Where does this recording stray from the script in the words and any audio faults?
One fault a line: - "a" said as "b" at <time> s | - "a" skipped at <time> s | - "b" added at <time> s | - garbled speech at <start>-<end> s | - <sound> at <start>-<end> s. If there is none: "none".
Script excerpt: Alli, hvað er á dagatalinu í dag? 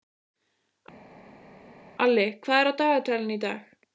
none